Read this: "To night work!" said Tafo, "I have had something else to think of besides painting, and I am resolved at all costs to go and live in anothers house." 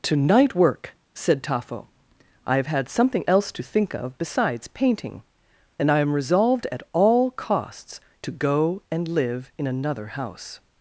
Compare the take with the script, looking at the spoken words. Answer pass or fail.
fail